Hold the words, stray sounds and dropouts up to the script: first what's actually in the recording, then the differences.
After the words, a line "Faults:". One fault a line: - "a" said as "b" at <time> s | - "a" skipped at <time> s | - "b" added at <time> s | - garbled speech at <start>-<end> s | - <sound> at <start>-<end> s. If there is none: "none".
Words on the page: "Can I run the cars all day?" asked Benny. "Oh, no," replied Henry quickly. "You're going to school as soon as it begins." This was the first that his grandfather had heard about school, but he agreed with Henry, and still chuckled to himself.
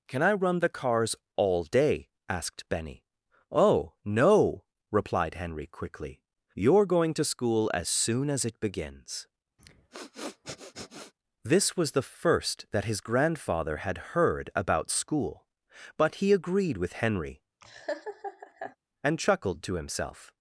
"Can I run the cars all day?" asked Benny. "Oh, no," replied Henry quickly. "You're going to school as soon as it begins." This was the first that his grandfather had heard about school, but he agreed with Henry, and chuckled to himself.
Faults:
- sniff at 9.6-11.1 s
- laugh at 17.6-18.8 s
- "still" skipped at 19.2 s